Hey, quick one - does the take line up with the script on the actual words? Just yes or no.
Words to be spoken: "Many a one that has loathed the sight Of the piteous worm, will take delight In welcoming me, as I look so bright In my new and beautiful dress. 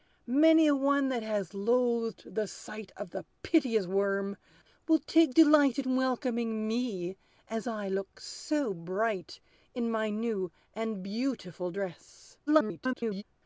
no